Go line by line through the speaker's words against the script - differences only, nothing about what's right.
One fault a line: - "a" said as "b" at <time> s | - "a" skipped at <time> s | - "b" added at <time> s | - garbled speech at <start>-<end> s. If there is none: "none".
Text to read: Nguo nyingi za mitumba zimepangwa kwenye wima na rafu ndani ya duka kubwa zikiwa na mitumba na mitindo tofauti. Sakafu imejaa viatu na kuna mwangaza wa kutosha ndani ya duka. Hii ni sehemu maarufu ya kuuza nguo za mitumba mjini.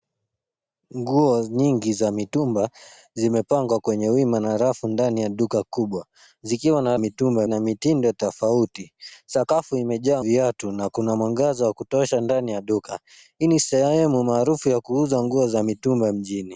none